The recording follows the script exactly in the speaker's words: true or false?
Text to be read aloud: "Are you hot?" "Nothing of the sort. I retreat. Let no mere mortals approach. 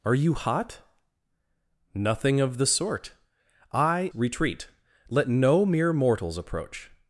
true